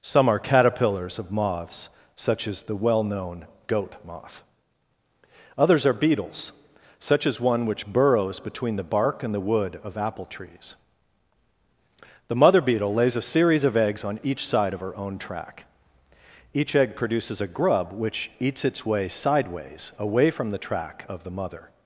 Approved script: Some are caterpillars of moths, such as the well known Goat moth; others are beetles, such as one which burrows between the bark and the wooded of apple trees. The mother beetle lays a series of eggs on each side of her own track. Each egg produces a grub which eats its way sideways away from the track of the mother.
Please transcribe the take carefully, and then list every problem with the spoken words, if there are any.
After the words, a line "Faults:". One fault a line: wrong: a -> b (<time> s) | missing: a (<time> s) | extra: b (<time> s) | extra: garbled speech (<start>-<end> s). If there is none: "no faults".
Some are caterpillars of moths, such as the well known Goat moth; others are beetles, such as one which burrows between the bark and the wood of apple trees. The mother beetle lays a series of eggs on each side of her own track. Each egg produces a grub which eats its way sideways away from the track of the mother.
Faults:
wrong: wooded -> wood (9.4 s)